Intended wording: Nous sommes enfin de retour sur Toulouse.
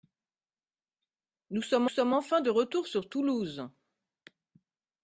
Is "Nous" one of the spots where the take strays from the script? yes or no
no